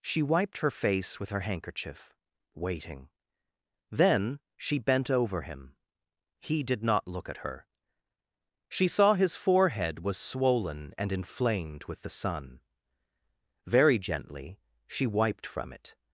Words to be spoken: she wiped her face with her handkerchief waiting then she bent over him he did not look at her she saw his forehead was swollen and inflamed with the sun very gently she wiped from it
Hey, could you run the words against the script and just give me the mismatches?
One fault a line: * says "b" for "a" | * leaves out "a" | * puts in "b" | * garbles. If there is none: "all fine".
all fine